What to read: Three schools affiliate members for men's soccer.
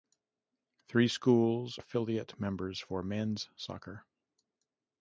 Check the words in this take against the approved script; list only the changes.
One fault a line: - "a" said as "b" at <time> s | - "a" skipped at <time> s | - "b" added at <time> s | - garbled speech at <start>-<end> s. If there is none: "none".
none